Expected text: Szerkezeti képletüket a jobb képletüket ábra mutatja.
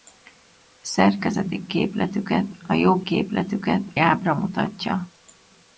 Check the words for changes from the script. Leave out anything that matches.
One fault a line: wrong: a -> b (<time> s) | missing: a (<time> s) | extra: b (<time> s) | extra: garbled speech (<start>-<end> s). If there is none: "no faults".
no faults